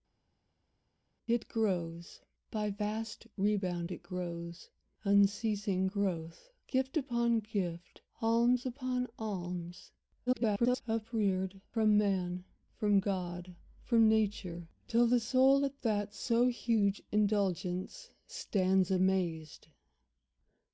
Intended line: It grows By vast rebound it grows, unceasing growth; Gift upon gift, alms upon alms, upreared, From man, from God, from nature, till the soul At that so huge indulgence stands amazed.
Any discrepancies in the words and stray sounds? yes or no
yes